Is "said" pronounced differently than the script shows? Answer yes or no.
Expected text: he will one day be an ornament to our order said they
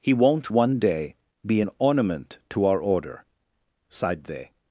yes